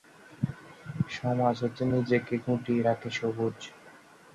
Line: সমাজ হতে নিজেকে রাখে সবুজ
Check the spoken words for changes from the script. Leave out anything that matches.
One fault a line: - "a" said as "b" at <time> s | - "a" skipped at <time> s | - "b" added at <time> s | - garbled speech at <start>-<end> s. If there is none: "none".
- "গুটিয়ে" added at 2.4 s